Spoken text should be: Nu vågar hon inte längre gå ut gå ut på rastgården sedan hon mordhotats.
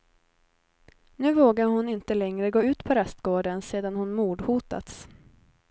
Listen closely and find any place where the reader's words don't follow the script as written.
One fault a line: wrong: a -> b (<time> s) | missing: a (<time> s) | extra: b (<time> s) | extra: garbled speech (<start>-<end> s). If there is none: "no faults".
missing: gå ut (2.8 s)